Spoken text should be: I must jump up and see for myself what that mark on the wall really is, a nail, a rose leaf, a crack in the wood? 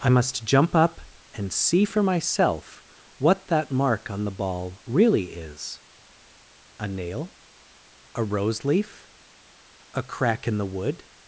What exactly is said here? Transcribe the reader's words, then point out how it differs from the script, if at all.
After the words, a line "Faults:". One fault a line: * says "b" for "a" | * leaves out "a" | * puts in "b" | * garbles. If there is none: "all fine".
I must jump up and see for myself what that mark on the ball really is, a nail, a rose leaf, a crack in the wood?
Faults:
* says "ball" for "wall"